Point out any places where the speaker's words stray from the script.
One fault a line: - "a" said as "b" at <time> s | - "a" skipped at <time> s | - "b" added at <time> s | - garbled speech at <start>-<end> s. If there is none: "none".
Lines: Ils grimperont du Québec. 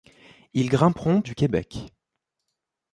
none